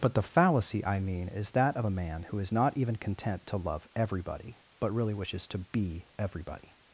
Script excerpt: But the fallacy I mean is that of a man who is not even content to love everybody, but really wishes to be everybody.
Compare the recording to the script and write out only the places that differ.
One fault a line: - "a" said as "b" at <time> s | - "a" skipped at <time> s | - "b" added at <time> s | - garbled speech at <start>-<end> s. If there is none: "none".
none